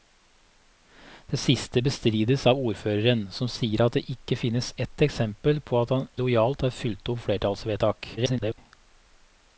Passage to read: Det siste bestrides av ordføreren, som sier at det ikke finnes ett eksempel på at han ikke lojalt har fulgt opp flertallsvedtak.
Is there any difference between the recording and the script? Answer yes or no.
yes